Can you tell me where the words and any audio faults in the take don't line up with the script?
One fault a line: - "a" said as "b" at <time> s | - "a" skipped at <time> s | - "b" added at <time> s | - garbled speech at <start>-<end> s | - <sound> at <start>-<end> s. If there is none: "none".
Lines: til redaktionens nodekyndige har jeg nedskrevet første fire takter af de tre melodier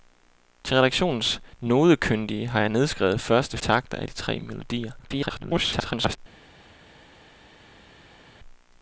- "fire" skipped at 3.6 s
- garbled speech at 5.0-6.2 s